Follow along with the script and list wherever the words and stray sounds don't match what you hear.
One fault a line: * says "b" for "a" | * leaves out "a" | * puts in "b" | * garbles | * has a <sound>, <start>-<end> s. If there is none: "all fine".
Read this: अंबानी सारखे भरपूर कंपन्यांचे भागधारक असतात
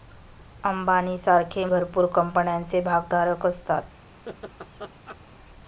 * has a laugh, 4.3-5.2 s